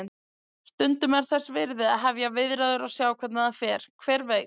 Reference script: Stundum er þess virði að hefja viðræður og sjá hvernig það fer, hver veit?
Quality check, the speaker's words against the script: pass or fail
pass